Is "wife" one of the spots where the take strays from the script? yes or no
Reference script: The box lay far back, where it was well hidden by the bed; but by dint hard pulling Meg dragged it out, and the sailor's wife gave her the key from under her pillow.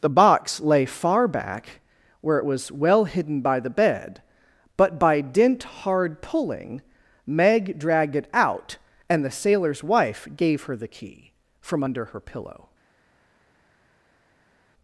no